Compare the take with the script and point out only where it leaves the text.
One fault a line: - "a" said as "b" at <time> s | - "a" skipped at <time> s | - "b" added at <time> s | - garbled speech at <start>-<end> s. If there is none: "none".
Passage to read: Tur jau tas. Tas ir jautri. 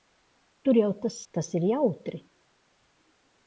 none